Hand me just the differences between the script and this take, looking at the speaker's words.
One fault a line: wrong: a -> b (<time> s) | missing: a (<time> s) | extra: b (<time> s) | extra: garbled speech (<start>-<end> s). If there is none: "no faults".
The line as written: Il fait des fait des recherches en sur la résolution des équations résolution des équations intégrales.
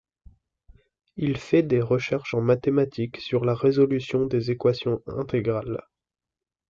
missing: fait des (1.8 s)
extra: mathématiques (2.4 s)
missing: résolution des équations (5.0 s)